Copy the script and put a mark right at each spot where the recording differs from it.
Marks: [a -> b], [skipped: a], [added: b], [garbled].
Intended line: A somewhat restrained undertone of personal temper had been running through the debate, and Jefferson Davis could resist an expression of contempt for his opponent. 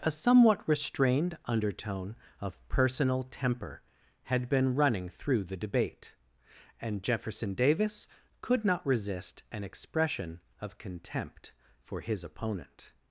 A somewhat restrained undertone of personal temper had been running through the debate, and Jefferson Davis could [added: not] resist an expression of contempt for his opponent.